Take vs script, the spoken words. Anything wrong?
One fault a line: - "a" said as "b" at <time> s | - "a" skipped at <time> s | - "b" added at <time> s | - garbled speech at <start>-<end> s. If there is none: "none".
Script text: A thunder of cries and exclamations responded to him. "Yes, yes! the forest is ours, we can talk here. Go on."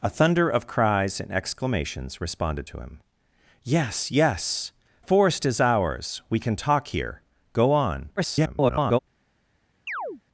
- "the" skipped at 4.7 s
- garbled speech at 8.2-9.0 s